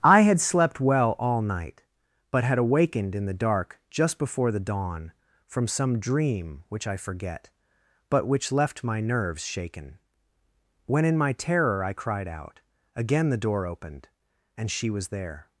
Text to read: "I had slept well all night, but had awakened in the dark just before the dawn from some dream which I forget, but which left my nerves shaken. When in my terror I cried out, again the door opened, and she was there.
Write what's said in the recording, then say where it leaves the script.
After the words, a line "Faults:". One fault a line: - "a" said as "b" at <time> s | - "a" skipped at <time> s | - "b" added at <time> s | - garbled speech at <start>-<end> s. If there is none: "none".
"I had slept well all night, but had awakened in the dark just before the dawn from some dream which I forget, but which left my nerves shaken. When in my terror I cried out, again the door opened, and she was there.
Faults:
none